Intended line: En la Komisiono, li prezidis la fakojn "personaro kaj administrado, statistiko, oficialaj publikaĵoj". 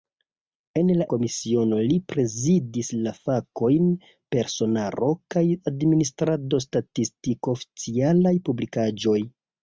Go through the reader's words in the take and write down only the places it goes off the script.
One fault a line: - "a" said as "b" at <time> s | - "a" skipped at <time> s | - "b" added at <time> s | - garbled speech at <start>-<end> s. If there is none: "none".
none